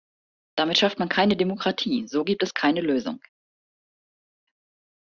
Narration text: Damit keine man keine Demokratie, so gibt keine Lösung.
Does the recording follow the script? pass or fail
fail